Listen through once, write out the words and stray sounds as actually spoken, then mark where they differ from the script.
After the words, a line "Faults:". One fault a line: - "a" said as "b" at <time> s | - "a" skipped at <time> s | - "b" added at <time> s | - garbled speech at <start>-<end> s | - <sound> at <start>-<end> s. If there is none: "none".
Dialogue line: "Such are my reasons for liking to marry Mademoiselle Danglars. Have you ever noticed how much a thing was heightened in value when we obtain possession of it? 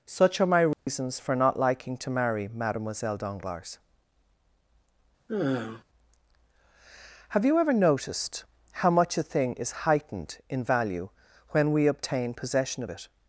"Such are my reasons for not liking to marry Mademoiselle Danglars. Have you ever noticed how much a thing is heightened in value when we obtain possession of it?
Faults:
- dropout at 0.7-0.9 s
- "not" added at 1.4 s
- sigh at 5.3-5.8 s
- "was" said as "is" at 9.5 s